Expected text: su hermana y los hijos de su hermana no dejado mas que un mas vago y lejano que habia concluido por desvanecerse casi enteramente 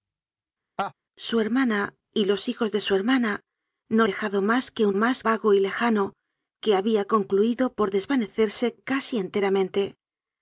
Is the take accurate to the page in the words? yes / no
yes